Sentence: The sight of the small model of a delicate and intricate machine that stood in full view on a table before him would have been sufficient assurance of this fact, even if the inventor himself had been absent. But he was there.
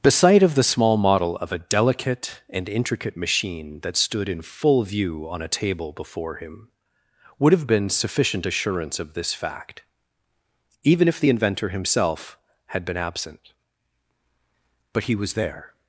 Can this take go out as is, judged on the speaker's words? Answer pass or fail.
pass